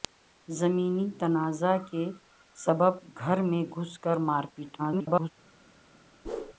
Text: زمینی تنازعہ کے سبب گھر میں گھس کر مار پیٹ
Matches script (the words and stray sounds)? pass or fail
fail